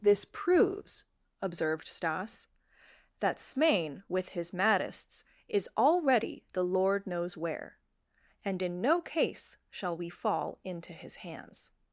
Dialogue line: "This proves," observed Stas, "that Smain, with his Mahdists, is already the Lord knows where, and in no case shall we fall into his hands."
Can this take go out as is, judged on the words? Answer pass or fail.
pass